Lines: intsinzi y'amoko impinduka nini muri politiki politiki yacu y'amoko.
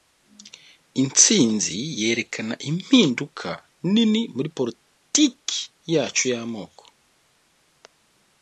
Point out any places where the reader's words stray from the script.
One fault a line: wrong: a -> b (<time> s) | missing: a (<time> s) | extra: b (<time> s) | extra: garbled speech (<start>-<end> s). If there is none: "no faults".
wrong: y'amoko -> yerekana (2.0 s)
missing: politiki (5.6 s)